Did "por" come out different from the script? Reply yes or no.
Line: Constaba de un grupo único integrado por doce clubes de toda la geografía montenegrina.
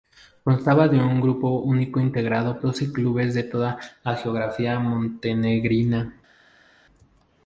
yes